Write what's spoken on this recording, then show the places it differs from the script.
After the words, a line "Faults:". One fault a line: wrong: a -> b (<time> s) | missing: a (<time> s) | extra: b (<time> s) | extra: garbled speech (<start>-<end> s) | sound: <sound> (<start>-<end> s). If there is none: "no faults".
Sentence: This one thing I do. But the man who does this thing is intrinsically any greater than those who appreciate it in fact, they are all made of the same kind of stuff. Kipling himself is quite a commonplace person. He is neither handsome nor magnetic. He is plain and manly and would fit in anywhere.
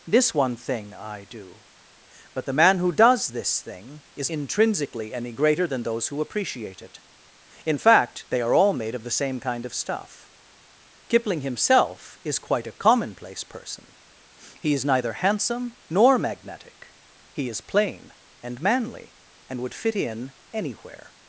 This one thing I do. But the man who does this thing is intrinsically any greater than those who appreciate it in fact, they are all made of the same kind of stuff. Kipling himself is quite a commonplace person. He is neither handsome nor magnetic. He is plain and manly and would fit in anywhere.
Faults:
no faults